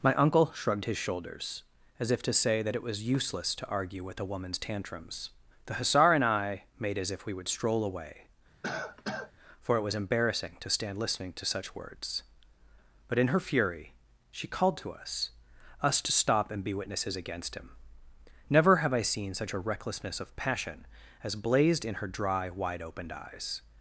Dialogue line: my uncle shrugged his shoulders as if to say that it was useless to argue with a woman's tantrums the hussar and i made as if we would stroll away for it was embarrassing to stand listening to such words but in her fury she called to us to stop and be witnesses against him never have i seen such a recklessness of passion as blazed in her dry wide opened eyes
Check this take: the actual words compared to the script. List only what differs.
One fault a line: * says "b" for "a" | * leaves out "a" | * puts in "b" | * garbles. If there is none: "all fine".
* puts in "us"